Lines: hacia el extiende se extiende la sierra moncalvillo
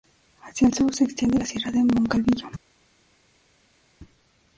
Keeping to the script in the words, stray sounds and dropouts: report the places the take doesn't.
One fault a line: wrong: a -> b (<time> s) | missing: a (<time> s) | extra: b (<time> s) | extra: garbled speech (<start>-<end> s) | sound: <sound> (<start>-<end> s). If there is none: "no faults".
wrong: extiende -> sur (0.7 s)
extra: de (1.7 s)